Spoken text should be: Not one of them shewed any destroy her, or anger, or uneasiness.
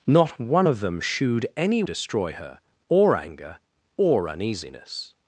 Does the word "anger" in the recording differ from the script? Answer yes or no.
no